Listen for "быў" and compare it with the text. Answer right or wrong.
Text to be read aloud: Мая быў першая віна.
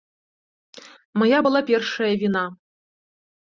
wrong